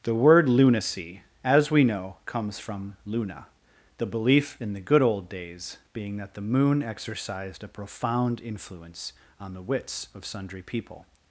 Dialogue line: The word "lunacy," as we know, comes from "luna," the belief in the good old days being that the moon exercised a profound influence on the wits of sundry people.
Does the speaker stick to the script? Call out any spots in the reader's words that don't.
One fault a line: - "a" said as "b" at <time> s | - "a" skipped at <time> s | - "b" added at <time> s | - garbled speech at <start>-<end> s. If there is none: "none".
none